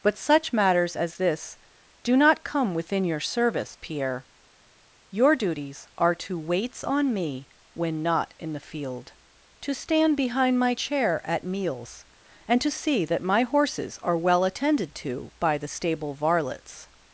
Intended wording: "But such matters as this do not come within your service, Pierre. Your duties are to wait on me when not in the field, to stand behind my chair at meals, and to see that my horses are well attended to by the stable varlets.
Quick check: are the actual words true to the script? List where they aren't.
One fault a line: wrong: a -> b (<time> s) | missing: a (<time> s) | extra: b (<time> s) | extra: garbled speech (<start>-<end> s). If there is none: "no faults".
wrong: wait -> waits (6.4 s)